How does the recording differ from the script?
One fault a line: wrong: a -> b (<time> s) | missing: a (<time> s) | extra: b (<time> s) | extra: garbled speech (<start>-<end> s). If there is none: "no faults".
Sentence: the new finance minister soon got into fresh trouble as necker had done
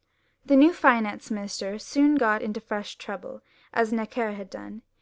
no faults